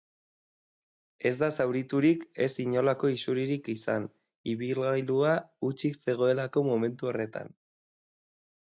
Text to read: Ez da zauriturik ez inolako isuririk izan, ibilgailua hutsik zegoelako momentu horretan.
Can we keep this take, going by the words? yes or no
yes